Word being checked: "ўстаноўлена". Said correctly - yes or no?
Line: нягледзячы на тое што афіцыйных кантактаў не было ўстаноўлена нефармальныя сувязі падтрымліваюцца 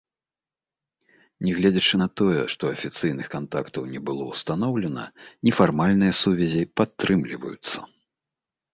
yes